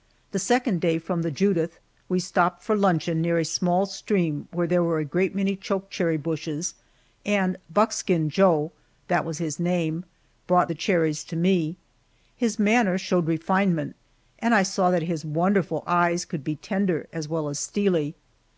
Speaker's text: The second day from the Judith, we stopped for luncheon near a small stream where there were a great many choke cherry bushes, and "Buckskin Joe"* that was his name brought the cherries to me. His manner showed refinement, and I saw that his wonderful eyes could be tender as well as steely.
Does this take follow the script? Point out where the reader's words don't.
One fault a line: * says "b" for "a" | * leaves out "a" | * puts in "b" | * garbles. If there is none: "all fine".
all fine